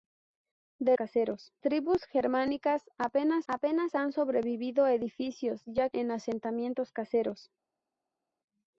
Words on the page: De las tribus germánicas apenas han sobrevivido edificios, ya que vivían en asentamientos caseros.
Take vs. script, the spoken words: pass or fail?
fail